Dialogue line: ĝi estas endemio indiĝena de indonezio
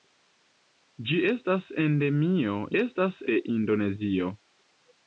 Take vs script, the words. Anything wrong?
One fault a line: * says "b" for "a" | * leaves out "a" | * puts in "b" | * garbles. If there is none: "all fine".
* says "estas" for "indiĝena"